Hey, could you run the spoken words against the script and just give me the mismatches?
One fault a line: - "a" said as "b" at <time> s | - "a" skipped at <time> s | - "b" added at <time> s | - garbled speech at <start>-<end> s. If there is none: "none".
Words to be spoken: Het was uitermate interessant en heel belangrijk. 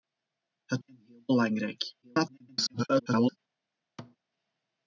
- "was uitermate interessant" skipped at 0.8 s
- garbled speech at 2.0-3.4 s